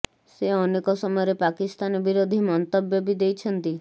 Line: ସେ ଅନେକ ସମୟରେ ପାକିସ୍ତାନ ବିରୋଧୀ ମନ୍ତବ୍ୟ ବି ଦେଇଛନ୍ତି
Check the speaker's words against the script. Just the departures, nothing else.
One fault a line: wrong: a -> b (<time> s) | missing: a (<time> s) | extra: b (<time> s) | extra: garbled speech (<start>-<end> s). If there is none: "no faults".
no faults